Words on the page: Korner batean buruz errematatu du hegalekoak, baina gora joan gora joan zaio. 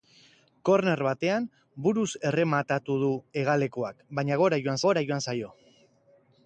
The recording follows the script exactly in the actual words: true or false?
true